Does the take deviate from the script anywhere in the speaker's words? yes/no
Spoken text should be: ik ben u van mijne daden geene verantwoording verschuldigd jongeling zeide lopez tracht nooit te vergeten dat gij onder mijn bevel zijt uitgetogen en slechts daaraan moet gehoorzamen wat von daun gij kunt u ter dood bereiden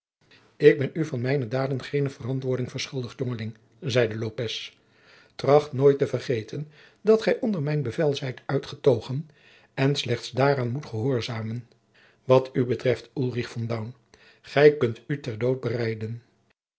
yes